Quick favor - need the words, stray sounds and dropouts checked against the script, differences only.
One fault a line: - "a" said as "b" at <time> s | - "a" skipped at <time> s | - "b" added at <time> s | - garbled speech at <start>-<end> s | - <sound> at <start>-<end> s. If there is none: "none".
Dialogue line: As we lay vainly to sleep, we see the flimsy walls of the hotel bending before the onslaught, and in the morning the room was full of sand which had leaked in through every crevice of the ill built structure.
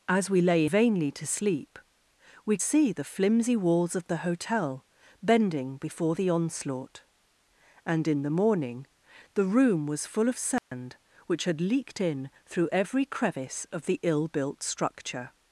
- dropout at 10.6-10.7 s